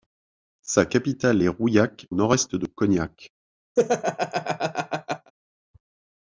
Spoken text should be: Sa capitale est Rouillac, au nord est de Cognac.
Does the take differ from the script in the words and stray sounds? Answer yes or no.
yes